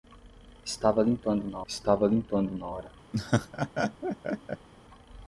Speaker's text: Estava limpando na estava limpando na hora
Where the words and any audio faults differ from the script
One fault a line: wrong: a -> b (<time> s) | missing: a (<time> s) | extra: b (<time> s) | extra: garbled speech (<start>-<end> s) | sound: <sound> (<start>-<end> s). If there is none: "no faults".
sound: laugh (3.1-4.7 s)